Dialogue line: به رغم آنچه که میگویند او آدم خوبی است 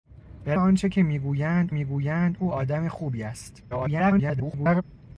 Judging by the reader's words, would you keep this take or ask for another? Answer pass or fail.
fail